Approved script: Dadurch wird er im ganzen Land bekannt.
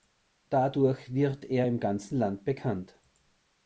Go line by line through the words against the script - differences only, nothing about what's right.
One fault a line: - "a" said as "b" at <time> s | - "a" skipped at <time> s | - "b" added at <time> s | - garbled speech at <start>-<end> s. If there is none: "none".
none